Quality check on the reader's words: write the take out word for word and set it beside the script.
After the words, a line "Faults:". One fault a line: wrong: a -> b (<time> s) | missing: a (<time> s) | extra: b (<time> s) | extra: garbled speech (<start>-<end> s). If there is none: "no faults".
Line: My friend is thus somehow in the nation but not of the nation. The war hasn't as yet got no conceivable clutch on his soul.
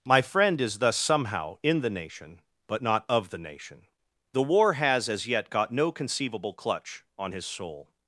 My friend is thus somehow in the nation but not of the nation. The war has as yet got no conceivable clutch on his soul.
Faults:
wrong: hasn't -> has (4.7 s)